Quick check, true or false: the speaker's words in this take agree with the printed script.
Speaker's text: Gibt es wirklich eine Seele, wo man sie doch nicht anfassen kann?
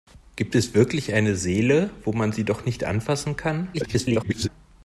false